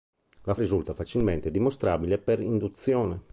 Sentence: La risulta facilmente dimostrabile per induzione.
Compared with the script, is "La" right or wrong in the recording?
right